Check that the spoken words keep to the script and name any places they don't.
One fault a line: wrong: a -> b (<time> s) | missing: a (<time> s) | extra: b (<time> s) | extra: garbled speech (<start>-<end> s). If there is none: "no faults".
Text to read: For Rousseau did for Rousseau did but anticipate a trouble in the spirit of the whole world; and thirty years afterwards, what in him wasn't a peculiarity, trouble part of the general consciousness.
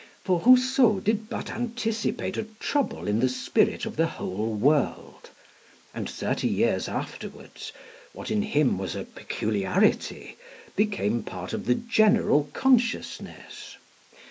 missing: for Rousseau did (1.3 s)
wrong: wasn't -> was (8.8 s)
wrong: trouble -> became (10.7 s)